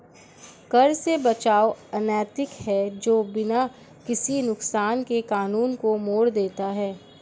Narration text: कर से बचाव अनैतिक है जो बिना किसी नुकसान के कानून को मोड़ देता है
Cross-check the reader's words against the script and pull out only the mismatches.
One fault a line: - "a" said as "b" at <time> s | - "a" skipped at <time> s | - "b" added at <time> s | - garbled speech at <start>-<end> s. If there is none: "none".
none